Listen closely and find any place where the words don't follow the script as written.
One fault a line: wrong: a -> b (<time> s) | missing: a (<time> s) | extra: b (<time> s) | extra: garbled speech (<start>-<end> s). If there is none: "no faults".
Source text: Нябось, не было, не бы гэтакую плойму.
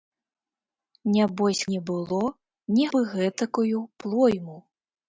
no faults